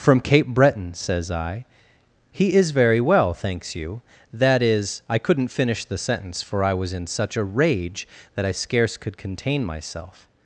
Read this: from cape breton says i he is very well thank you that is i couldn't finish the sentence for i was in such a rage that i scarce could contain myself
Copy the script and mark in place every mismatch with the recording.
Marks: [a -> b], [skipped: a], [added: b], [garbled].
from cape breton says i he is very well [thank -> thanks] you that is i couldn't finish the sentence for i was in such a rage that i scarce could contain myself